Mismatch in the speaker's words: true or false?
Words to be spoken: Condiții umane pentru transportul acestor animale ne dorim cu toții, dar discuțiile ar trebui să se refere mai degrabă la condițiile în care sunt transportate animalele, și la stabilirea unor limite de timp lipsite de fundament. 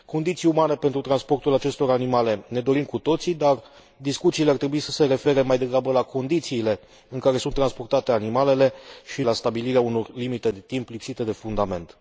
false